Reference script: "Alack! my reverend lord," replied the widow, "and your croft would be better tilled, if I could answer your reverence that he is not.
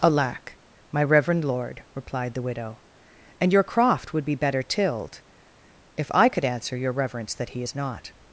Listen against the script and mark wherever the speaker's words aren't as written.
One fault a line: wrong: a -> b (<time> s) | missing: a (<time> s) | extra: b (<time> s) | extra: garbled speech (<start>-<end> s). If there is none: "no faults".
no faults